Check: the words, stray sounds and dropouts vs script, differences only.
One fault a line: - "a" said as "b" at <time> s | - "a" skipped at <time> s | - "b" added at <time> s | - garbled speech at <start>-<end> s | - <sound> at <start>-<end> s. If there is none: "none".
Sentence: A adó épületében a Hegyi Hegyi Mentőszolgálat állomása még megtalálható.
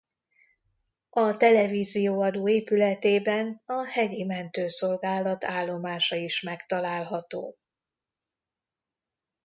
- "televízió" added at 1.4 s
- "Hegyi" skipped at 4.2 s
- "még" said as "is" at 6.1 s